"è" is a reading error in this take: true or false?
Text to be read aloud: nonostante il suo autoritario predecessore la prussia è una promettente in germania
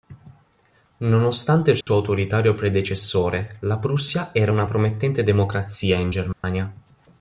true